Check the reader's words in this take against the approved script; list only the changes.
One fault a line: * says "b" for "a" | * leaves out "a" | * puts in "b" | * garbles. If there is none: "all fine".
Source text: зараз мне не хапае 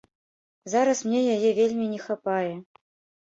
* puts in "яе вельмі"